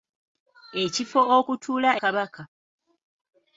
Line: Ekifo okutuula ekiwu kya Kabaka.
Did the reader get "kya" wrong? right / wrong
wrong